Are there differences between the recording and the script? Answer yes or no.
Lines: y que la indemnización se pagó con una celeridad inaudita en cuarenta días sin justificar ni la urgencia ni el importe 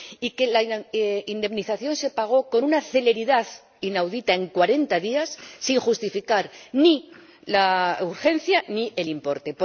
no